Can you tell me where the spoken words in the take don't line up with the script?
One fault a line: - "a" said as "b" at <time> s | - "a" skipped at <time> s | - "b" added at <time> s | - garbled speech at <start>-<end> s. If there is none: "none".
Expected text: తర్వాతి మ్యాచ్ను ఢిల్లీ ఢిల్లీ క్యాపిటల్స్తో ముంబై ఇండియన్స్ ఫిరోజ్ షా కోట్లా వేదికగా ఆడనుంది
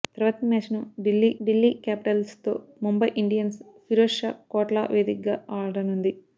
none